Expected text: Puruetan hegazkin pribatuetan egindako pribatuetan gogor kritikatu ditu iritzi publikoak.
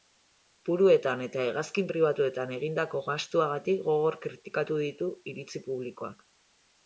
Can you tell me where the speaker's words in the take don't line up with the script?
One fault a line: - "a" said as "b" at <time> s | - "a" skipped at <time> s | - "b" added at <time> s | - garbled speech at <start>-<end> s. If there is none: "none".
- "eta" added at 1.2 s
- "pribatuetan" said as "gastuagatik" at 3.1 s